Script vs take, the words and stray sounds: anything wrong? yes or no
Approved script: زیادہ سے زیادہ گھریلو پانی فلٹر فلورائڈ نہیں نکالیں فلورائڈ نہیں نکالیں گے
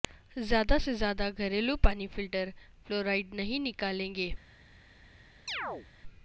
yes